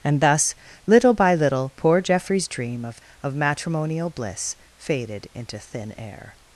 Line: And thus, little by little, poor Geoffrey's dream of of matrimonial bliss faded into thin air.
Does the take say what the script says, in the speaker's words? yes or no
yes